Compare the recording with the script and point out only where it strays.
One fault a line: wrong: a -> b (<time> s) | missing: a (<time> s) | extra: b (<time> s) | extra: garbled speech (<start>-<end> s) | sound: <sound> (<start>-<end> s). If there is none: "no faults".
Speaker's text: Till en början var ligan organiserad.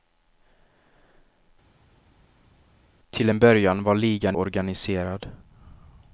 no faults